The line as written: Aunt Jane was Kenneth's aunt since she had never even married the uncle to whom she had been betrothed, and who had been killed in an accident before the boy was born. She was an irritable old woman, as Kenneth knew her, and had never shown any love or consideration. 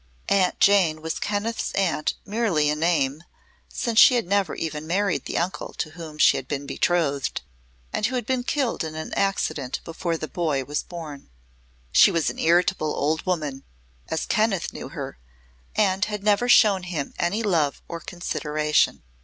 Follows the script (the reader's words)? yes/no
no